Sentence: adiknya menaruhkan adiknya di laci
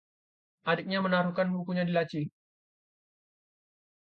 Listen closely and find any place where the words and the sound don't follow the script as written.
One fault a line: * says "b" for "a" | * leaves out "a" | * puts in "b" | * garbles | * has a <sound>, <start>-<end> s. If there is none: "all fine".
* says "bukunya" for "adiknya"